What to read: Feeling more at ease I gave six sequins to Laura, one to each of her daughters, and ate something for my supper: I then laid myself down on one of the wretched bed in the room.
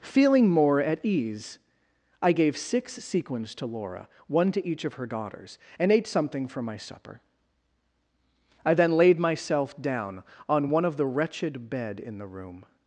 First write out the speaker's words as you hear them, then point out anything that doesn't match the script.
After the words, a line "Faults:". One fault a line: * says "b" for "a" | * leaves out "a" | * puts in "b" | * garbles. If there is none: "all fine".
Feeling more at ease I gave six sequins to Laura, one to each of her daughters, and ate something for my supper: I then laid myself down on one of the wretched bed in the room.
Faults:
all fine